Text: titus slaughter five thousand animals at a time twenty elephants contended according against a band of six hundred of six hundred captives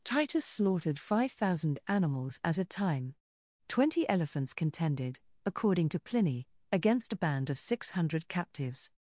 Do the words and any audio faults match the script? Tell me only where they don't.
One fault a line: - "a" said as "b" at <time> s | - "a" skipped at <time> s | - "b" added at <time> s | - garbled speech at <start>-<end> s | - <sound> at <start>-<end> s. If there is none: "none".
- "slaughter" said as "slaughtered" at 0.5 s
- "to pliny" added at 5.9 s
- "of six hundred" skipped at 8.3 s